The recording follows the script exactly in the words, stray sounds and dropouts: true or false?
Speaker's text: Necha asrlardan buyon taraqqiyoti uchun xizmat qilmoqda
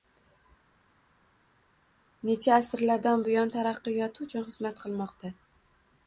true